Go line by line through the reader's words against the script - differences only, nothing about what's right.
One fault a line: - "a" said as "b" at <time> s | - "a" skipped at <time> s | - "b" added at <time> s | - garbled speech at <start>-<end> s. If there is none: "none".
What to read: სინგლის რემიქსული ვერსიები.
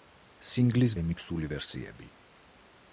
none